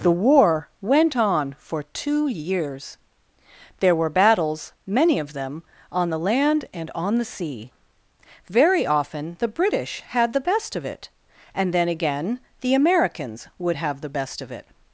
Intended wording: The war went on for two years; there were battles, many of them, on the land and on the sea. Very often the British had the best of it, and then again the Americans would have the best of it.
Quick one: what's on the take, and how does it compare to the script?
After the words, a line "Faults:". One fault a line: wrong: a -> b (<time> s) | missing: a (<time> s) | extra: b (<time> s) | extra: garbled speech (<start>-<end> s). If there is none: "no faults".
The war went on for two years; there were battles, many of them, on the land and on the sea. Very often the British had the best of it, and then again the Americans would have the best of it.
Faults:
no faults